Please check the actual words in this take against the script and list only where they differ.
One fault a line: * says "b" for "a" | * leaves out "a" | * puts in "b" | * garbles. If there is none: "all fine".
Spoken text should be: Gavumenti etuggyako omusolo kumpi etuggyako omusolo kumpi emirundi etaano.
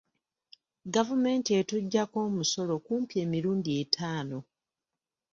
* leaves out "etuggyako omusolo kumpi"